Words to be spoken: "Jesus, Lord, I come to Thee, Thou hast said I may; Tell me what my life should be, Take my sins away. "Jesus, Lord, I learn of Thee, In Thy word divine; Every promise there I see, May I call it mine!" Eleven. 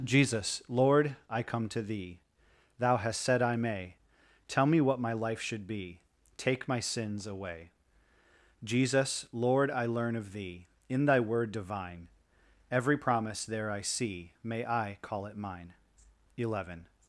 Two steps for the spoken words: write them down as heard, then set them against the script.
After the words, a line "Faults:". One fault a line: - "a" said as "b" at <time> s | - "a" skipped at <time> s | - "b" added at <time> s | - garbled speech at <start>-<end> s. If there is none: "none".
"Jesus, Lord, I come to Thee, Thou hast said I may; Tell me what my life should be, Take my sins away. "Jesus, Lord, I learn of Thee, In Thy word divine; Every promise there I see, May I call it mine!" Eleven.
Faults:
none